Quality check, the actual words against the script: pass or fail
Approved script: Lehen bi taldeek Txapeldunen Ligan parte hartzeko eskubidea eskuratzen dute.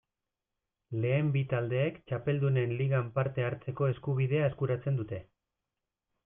pass